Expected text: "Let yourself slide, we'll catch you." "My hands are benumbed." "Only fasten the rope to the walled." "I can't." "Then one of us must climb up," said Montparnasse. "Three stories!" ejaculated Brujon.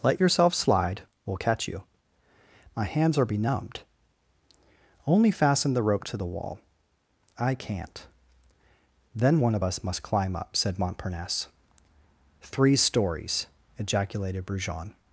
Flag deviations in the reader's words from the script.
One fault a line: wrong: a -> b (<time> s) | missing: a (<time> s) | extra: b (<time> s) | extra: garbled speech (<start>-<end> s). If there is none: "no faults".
wrong: walled -> wall (6.2 s)